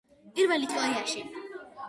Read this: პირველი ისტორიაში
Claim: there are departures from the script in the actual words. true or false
false